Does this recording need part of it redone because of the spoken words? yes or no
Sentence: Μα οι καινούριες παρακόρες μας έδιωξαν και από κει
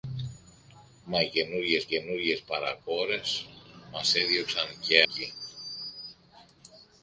yes